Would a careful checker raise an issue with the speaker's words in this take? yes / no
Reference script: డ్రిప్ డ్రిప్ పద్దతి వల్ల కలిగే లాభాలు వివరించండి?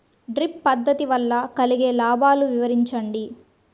yes